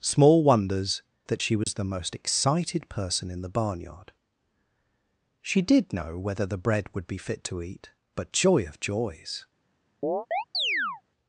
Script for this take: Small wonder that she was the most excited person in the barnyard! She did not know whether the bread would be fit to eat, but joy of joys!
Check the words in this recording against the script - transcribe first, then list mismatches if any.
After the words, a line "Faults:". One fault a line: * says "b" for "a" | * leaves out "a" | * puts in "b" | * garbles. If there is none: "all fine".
Small wonders that she was the most excited person in the barnyard! She did know whether the bread would be fit to eat, but joy of joys!
Faults:
* says "wonders" for "wonder"
* leaves out "not"